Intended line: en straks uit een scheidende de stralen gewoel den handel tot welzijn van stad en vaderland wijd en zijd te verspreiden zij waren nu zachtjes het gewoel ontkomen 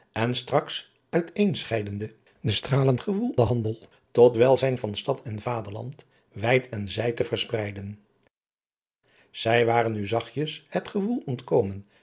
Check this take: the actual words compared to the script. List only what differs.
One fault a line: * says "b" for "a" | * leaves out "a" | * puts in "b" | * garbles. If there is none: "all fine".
all fine